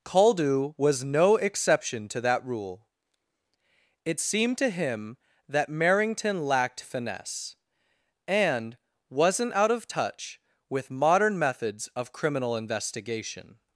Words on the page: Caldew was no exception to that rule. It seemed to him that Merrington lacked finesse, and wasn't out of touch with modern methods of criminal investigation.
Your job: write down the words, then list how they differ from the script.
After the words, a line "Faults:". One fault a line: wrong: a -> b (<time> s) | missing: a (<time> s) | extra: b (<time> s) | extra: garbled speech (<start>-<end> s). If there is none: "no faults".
Caldew was no exception to that rule. It seemed to him that Merrington lacked finesse, and wasn't out of touch with modern methods of criminal investigation.
Faults:
no faults